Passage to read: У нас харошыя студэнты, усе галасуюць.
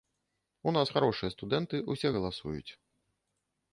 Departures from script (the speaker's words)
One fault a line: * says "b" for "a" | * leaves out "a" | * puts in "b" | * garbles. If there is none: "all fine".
all fine